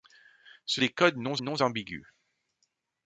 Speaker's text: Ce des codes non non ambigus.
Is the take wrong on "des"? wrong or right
right